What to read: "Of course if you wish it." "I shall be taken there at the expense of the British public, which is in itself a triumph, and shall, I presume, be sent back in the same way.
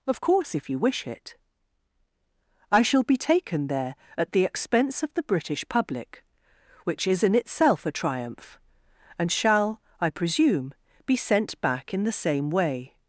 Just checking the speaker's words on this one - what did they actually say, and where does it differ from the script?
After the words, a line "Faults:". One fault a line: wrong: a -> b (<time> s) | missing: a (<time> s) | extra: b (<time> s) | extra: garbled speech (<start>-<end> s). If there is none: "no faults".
"Of course if you wish it." "I shall be taken there at the expense of the British public, which is in itself a triumph, and shall, I presume, be sent back in the same way.
Faults:
no faults